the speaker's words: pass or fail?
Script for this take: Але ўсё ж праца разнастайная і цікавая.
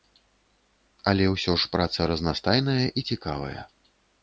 pass